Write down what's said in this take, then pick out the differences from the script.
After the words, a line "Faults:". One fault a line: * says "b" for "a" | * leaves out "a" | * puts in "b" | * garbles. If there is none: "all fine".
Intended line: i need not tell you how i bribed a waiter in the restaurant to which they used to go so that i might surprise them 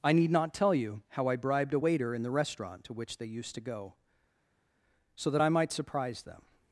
i need not tell you how i bribed a waiter in the restaurant to which they used to go so that i might surprise them
Faults:
all fine